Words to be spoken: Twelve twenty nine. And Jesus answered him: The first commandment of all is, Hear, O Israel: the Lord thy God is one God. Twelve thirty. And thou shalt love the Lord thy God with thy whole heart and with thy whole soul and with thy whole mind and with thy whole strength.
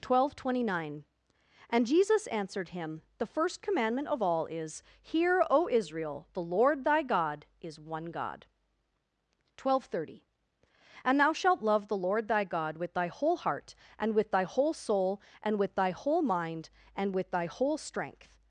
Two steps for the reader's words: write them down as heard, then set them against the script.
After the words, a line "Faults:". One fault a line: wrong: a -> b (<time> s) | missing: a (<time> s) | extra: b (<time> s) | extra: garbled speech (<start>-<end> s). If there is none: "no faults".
Twelve twenty nine. And Jesus answered him: The first commandment of all is, Hear, O Israel: the Lord thy God is one God. Twelve thirty. And thou shalt love the Lord thy God with thy whole heart and with thy whole soul and with thy whole mind and with thy whole strength.
Faults:
no faults